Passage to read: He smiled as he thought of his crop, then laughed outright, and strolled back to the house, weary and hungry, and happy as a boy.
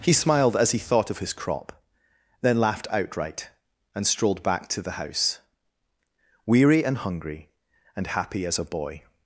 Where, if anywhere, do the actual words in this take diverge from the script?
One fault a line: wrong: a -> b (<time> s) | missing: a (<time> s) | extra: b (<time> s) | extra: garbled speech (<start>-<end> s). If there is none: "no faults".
no faults